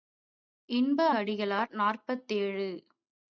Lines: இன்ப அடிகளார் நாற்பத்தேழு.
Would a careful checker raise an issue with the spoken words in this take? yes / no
no